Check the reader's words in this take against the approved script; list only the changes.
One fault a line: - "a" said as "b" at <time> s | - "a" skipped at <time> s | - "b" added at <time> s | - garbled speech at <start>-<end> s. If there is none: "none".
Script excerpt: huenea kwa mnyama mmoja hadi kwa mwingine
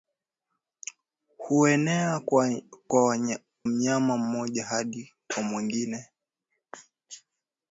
- "kwa" skipped at 2.2 s